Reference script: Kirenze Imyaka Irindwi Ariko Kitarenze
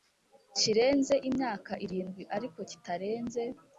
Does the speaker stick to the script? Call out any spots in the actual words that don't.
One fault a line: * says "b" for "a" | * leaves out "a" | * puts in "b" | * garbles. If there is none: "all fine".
all fine